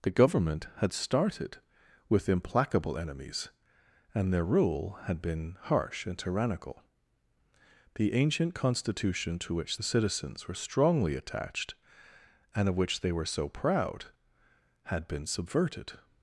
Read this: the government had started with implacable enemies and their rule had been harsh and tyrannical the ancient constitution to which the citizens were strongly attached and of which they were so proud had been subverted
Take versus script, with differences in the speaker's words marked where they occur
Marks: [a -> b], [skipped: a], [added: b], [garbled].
the government had started with implacable enemies and their rule had been harsh and tyrannical the ancient constitution to which the citizens were strongly attached and of which they were so proud had been subverted